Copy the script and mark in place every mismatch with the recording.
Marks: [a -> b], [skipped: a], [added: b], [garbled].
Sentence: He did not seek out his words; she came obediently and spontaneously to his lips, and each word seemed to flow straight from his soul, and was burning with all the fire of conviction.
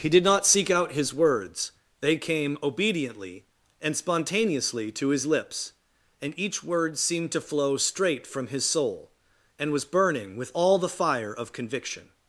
He did not seek out his words; [she -> they] came obediently and spontaneously to his lips, and each word seemed to flow straight from his soul, and was burning with all the fire of conviction.